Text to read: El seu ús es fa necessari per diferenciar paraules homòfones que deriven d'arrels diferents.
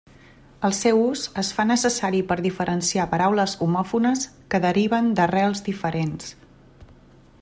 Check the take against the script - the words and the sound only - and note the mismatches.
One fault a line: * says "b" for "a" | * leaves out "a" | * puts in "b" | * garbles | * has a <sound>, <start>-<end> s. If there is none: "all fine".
all fine